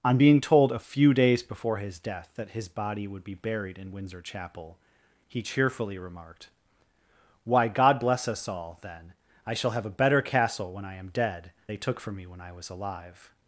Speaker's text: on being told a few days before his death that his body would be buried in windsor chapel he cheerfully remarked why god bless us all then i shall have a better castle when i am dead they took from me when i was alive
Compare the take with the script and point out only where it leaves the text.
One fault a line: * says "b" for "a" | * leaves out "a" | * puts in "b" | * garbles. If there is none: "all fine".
all fine